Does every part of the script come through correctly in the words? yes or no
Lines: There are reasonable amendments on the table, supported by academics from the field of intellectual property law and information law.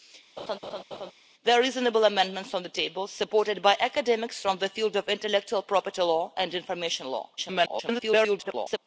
no